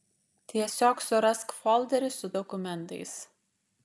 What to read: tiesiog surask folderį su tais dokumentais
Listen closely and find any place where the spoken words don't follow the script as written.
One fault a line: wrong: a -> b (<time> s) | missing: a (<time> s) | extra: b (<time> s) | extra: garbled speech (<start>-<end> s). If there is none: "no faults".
missing: tais (2.3 s)